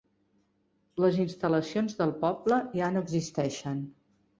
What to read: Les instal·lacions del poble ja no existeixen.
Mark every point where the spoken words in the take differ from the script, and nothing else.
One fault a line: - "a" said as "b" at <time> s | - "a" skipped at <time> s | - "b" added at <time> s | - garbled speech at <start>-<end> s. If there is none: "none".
none